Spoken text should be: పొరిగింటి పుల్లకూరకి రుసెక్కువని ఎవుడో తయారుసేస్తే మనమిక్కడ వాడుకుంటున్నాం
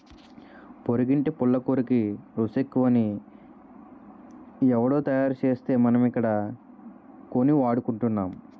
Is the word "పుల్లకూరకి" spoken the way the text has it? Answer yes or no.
yes